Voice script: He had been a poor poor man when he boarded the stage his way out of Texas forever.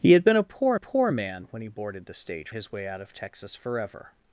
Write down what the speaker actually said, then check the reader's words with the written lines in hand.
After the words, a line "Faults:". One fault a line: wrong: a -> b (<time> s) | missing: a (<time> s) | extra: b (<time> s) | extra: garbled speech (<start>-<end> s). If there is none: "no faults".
He had been a poor poor man when he boarded the stage his way out of Texas forever.
Faults:
no faults